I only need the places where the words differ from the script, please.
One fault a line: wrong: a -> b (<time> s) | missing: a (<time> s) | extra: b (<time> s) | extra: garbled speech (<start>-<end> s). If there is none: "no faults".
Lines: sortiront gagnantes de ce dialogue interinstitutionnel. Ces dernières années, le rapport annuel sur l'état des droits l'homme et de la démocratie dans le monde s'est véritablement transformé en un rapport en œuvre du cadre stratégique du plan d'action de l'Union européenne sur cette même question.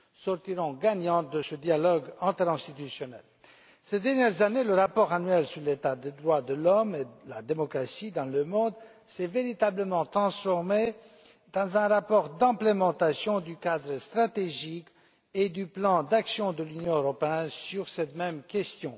extra: de (6.4 s)
extra: de mise (12.3 s)
extra: et (15.3 s)